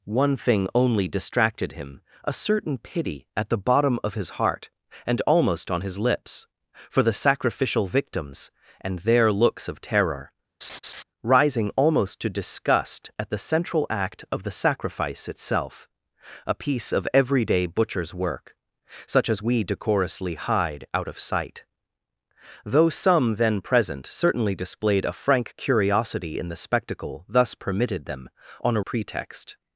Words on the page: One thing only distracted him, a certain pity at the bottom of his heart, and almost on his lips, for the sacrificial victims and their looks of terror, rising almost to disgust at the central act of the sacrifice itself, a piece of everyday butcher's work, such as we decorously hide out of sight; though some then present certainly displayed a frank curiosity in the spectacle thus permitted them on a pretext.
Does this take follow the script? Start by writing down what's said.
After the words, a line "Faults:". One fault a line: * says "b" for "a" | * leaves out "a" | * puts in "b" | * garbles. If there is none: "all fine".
One thing only distracted him, a certain pity at the bottom of his heart, and almost on his lips, for the sacrificial victims and their looks of terror, rising almost to disgust at the central act of the sacrifice itself, a piece of everyday butcher's work, such as we decorously hide out of sight; though some then present certainly displayed a frank curiosity in the spectacle thus permitted them on a pretext.
Faults:
all fine